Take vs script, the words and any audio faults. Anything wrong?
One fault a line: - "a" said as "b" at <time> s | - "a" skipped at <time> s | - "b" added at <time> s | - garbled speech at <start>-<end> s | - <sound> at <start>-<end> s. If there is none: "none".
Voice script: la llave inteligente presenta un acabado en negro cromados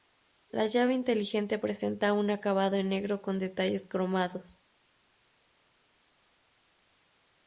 - "con detalles" added at 3.2 s